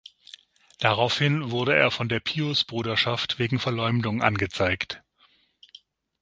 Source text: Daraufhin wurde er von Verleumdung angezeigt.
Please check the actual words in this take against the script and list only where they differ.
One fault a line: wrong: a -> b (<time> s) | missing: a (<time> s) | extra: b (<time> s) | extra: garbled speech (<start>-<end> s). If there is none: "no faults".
extra: der Piusbruderschaft wegen (2.1 s)